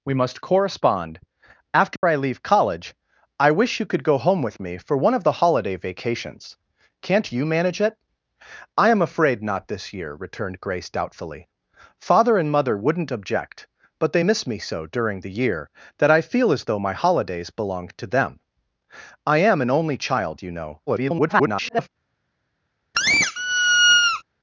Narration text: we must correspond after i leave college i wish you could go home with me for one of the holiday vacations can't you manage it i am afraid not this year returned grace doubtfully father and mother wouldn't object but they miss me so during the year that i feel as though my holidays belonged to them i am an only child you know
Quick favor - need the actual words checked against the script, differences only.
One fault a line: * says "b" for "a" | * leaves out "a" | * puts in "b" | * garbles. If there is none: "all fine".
* garbles